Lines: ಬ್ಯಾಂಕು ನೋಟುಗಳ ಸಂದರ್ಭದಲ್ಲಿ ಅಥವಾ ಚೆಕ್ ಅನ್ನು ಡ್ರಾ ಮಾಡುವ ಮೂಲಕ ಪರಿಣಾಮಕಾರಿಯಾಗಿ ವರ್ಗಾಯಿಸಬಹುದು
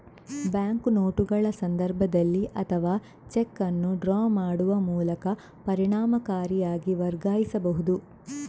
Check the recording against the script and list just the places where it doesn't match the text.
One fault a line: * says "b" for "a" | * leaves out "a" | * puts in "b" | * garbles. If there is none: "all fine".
all fine